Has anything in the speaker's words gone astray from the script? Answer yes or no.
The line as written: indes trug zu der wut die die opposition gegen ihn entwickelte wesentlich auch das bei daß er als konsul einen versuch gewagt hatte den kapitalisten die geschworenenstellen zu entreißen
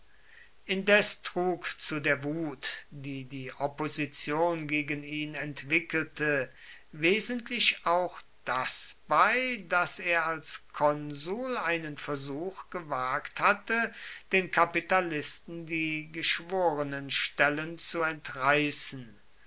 no